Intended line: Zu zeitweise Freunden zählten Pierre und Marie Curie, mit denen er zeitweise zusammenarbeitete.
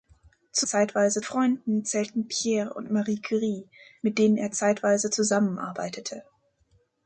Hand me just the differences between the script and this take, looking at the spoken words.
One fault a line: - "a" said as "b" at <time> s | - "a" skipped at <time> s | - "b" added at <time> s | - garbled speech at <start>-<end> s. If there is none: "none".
none